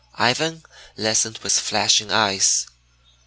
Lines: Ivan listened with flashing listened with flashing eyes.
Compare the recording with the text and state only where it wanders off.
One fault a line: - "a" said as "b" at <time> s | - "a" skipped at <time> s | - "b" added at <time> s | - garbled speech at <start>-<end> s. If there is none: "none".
- "listened with flashing" skipped at 2.1 s